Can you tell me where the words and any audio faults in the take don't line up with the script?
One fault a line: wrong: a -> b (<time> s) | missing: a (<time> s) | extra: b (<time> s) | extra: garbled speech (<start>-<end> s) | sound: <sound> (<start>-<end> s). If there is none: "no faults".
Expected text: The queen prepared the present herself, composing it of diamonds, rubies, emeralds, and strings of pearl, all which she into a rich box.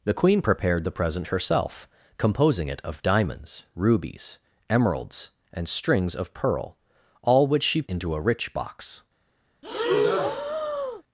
sound: breath (9.6-11.0 s)